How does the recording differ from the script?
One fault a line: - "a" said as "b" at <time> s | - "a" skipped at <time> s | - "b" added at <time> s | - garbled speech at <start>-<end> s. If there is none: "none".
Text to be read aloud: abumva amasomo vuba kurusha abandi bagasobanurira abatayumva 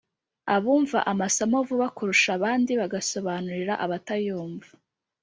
none